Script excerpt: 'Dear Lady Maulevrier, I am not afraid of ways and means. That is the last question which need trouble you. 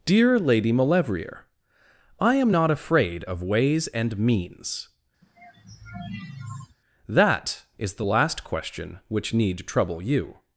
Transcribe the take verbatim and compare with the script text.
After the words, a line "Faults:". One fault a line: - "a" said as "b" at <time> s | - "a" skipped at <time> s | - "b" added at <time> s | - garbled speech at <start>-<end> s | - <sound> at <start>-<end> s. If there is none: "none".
'Dear Lady Maulevrier, I am not afraid of ways and means. That is the last question which need trouble you.
Faults:
- sigh at 5.2-6.8 s